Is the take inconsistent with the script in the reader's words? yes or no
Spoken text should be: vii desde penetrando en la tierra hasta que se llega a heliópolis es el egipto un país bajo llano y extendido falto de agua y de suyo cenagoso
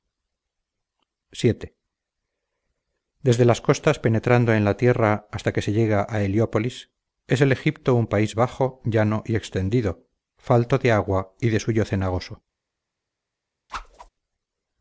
yes